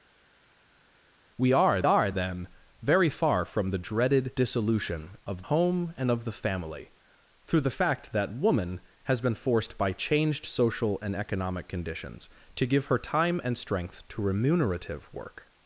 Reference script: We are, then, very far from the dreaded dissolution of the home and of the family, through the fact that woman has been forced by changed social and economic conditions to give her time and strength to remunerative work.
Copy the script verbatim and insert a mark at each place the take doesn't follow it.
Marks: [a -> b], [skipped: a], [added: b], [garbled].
We are, [added: are] then, very far from the dreaded dissolution of [skipped: the] home and of the family, through the fact that woman has been forced by changed social and economic conditions to give her time and strength to remunerative work.